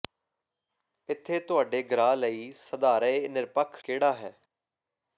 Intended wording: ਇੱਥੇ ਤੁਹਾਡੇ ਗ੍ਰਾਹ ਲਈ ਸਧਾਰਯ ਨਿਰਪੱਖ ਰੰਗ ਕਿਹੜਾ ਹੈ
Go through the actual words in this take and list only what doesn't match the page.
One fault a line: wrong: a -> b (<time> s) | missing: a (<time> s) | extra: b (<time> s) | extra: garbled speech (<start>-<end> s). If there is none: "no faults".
missing: ਰੰਗ (3.8 s)